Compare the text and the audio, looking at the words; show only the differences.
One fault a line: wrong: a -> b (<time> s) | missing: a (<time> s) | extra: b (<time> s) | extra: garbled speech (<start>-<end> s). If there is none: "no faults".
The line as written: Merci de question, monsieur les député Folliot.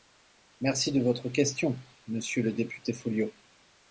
extra: votre (1.0 s)
wrong: les -> le (2.4 s)